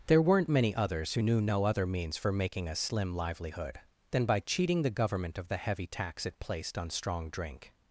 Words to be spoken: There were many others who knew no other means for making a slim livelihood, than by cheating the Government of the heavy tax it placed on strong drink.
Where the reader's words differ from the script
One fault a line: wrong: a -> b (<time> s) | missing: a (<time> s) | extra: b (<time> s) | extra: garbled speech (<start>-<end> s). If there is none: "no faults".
wrong: were -> weren't (0.2 s)